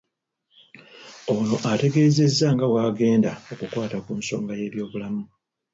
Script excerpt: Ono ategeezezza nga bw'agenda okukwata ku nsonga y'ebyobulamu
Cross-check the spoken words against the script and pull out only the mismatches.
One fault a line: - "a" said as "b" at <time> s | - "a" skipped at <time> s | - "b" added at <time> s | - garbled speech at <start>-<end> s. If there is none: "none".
none